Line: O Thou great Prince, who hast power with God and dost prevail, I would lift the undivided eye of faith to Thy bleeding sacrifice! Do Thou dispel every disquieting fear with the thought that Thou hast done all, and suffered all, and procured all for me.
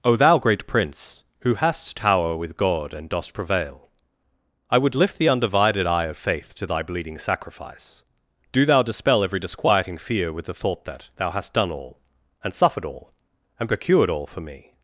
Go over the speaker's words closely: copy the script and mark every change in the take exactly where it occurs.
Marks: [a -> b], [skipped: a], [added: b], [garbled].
O Thou great Prince, who hast [power -> tower] with God and dost prevail, I would lift the undivided eye of faith to Thy bleeding sacrifice! Do Thou dispel every disquieting fear with the thought that Thou hast done all, and suffered all, and procured all for me.